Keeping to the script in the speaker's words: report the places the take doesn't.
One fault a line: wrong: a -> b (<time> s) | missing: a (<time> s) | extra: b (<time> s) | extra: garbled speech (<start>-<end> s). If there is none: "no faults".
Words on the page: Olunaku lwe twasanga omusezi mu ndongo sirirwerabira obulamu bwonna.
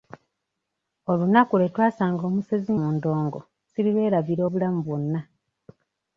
no faults